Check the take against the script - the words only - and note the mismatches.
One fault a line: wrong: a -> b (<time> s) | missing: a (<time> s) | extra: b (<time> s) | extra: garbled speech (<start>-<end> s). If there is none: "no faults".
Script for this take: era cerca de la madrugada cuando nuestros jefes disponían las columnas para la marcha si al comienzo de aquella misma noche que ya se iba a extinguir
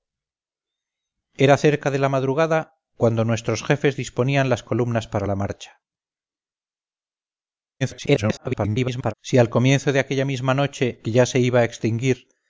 extra: garbled speech (7.8-9.1 s)